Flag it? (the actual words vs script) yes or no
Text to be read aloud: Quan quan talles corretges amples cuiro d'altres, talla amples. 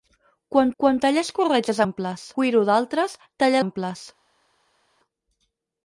no